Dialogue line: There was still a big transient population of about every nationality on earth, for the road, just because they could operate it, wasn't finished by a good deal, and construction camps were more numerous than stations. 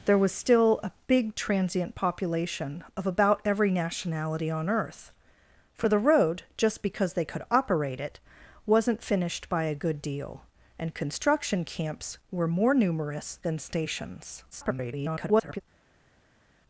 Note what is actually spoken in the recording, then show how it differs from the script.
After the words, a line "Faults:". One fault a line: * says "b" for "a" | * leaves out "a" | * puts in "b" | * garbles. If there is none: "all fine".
There was still a big transient population of about every nationality on earth, for the road, just because they could operate it, wasn't finished by a good deal, and construction camps were more numerous than stations. [garbled]
Faults:
* garbles